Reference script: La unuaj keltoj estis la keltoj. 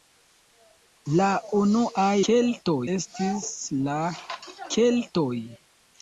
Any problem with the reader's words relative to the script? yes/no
no